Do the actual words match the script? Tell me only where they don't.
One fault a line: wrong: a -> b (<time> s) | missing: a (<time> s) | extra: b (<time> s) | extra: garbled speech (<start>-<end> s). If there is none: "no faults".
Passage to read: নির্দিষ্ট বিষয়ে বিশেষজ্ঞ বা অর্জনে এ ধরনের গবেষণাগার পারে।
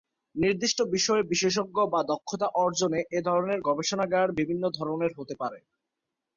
extra: দক্ষতা (2.1 s)
extra: বিভিন্ন ধরনের হতে (4.4 s)